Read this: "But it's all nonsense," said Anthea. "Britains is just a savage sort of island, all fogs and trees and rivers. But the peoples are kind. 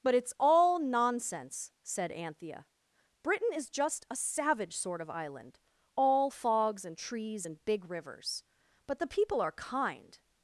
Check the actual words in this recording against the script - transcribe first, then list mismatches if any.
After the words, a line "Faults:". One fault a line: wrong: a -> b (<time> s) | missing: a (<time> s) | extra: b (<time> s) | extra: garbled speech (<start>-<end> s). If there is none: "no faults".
"But it's all nonsense," said Anthea. "Britain is just a savage sort of island, all fogs and trees and big rivers. But the people are kind.
Faults:
wrong: Britains -> Britain (3.2 s)
extra: big (7.6 s)
wrong: peoples -> people (9.0 s)